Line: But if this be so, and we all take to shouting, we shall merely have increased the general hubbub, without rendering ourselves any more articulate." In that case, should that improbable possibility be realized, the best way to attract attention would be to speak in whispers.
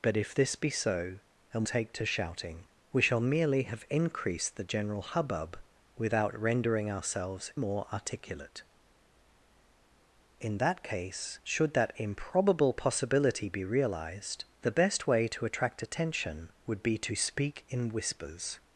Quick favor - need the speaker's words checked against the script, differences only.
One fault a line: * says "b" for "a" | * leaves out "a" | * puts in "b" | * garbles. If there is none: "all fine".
* leaves out "we all"
* leaves out "any"